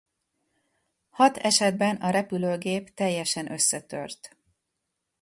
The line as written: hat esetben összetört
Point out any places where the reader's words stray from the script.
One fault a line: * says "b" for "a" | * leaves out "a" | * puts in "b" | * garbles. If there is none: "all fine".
* puts in "a repülőgép teljesen"